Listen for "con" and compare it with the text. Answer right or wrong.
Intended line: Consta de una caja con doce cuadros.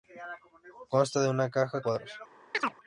wrong